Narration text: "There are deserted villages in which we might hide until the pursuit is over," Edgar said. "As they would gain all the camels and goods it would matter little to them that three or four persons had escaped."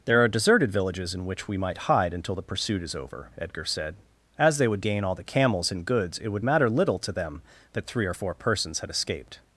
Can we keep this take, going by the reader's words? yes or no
yes